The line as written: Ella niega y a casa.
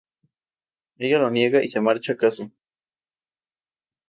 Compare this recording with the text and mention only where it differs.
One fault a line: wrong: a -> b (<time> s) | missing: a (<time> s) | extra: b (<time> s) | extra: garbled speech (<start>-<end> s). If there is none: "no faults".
extra: lo (1.2 s)
extra: se marcha (1.7 s)